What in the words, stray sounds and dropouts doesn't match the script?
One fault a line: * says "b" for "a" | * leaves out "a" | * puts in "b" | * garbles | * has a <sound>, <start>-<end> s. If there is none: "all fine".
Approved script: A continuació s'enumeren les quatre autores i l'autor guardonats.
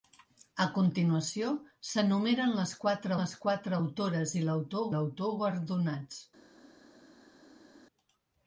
* puts in "les quatre"
* puts in "l'autor"